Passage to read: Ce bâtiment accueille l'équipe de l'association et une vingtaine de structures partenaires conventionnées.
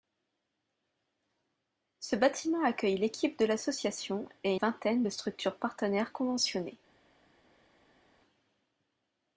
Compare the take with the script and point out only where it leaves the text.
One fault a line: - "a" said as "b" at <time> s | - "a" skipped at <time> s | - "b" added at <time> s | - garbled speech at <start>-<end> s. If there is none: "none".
- "une" skipped at 4.5 s